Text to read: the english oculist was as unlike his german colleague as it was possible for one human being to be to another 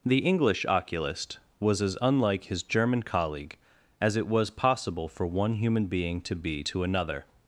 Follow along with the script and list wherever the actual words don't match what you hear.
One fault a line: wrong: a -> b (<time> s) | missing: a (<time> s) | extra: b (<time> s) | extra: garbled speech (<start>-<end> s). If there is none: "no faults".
no faults